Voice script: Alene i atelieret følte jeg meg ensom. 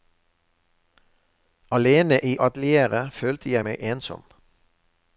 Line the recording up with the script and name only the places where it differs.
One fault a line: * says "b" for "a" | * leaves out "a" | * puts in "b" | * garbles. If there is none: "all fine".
all fine